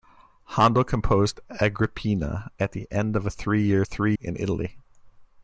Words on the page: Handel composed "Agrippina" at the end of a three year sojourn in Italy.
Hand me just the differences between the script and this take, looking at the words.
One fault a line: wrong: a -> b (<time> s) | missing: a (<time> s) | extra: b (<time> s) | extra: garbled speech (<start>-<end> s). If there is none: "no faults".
wrong: sojourn -> three (3.8 s)